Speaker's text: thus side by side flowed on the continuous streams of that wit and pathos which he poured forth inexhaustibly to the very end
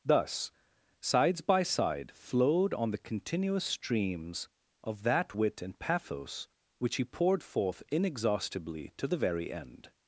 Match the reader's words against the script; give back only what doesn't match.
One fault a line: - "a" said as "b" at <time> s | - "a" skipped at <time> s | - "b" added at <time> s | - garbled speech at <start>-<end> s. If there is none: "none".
- "side" said as "sides" at 1.0 s